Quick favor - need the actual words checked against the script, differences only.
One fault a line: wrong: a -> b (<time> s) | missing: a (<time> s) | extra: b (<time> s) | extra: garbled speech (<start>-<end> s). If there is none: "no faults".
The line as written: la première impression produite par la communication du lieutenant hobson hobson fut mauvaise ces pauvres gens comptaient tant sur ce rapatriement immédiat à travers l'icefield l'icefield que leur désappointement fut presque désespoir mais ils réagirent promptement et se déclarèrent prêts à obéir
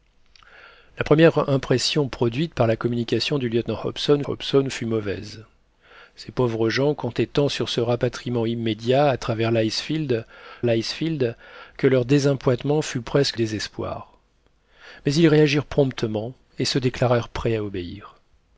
no faults